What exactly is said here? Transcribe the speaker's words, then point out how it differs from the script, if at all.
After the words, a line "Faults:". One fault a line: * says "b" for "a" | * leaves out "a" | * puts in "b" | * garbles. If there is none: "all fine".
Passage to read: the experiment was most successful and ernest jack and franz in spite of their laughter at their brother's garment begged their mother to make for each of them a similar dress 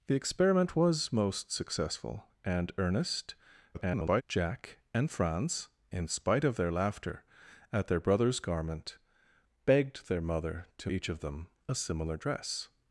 the experiment was most successful and ernest [garbled] jack and franz in spite of their laughter at their brother's garment begged their mother to each of them a similar dress
Faults:
* garbles
* leaves out "make for"